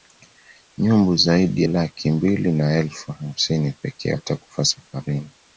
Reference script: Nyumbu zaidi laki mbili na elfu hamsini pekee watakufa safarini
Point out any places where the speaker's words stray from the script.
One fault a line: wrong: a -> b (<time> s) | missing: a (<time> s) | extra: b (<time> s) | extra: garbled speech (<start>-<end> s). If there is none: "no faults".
no faults